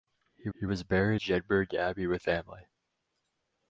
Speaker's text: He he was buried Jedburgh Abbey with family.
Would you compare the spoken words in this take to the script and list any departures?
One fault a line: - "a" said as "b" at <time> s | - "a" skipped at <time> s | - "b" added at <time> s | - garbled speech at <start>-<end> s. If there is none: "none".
none